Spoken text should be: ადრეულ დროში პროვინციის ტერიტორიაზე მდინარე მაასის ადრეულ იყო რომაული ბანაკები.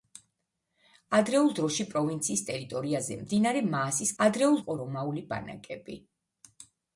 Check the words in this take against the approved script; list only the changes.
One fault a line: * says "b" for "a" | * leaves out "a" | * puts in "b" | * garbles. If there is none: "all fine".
all fine